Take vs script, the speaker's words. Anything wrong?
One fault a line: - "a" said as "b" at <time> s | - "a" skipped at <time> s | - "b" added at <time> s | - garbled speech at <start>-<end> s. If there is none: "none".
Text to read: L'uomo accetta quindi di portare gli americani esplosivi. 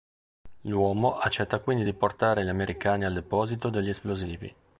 - "al deposito degli" added at 3.0 s